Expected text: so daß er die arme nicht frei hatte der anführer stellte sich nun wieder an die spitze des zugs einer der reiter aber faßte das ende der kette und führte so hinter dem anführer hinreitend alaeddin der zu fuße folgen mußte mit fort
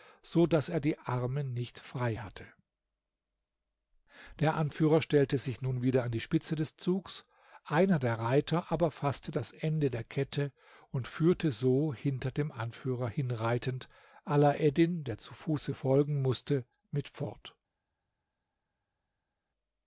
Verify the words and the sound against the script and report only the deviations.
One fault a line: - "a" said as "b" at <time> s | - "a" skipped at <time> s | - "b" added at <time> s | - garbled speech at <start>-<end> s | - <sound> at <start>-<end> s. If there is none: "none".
none